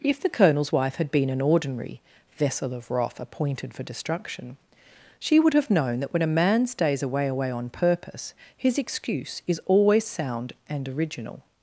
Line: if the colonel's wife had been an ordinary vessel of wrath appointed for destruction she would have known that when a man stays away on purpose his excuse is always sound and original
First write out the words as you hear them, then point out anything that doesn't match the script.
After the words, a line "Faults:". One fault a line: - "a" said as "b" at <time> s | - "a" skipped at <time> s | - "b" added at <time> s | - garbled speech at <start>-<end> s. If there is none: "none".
if the colonel's wife had been an ordinary vessel of wrath appointed for destruction she would have known that when a man stays away away on purpose his excuse is always sound and original
Faults:
- "away" added at 7.3 s